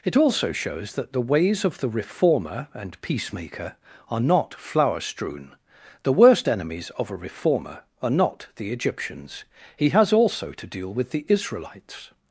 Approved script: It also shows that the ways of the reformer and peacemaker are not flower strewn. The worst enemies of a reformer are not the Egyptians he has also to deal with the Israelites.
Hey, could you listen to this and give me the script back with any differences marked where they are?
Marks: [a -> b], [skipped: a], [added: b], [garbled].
It also shows that the ways of the reformer and peacemaker are not flower strewn. The worst enemies of a reformer are not the Egyptians he has also to deal with the Israelites.